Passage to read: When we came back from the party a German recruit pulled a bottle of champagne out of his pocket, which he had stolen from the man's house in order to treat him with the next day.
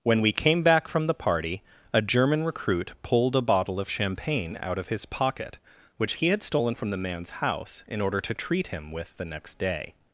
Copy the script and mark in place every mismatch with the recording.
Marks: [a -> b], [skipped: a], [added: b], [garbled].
When we came back from the party a German recruit pulled a bottle of champagne out of his pocket, which he had stolen from the man's house in order to treat him with the next day.